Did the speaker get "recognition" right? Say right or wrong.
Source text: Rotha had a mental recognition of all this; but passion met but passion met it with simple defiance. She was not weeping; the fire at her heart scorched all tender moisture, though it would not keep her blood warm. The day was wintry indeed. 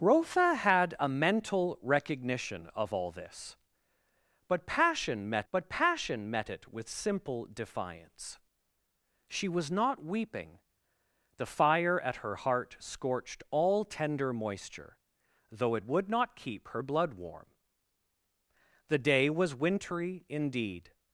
right